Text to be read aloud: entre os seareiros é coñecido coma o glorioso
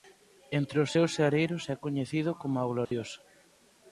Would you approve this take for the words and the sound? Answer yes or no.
no